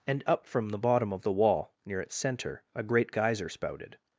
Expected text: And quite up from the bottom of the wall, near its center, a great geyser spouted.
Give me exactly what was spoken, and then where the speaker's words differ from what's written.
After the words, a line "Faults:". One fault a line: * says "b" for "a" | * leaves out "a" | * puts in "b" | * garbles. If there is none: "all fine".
And up from the bottom of the wall, near its center, a great geyser spouted.
Faults:
* leaves out "quite"